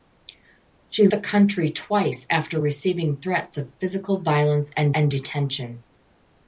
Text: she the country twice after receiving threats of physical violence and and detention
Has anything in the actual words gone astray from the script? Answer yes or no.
no